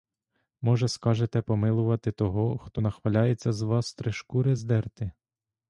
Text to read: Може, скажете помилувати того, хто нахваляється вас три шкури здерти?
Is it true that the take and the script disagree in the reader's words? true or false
true